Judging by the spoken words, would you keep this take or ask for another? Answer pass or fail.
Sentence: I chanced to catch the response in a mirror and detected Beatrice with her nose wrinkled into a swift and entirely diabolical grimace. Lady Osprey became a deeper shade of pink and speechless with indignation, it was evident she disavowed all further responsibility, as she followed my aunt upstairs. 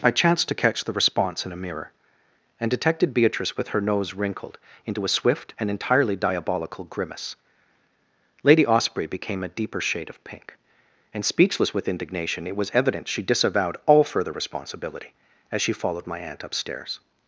pass